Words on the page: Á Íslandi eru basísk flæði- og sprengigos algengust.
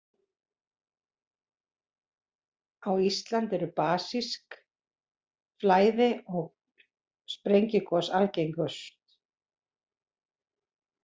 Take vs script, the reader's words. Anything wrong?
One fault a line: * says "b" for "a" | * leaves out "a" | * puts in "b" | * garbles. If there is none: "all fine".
all fine